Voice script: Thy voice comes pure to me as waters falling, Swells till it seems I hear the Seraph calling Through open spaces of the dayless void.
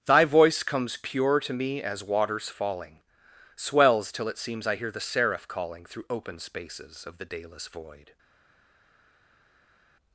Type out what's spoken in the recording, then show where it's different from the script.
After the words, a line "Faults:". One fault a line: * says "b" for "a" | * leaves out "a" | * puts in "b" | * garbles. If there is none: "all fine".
Thy voice comes pure to me as waters falling, Swells till it seems I hear the Seraph calling Through open spaces of the dayless void.
Faults:
all fine